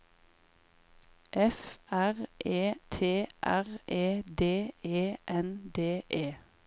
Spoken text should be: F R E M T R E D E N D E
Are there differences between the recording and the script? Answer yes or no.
yes